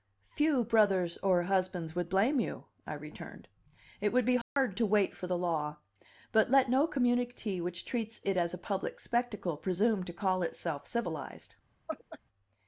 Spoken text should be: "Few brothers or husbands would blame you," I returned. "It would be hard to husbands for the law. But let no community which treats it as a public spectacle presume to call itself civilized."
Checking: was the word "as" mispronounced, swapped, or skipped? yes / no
no